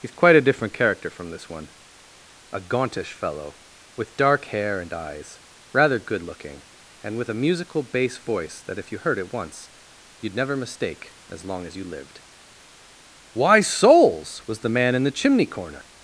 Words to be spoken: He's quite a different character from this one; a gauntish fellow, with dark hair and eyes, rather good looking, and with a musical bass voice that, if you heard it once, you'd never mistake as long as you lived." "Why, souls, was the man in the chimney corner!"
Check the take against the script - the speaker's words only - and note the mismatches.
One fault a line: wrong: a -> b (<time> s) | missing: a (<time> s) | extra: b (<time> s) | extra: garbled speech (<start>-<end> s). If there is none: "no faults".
no faults